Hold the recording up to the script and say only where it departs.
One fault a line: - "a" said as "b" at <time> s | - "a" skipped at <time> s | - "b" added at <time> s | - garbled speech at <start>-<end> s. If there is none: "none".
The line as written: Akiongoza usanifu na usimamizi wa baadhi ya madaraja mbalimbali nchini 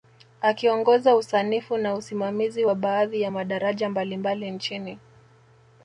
none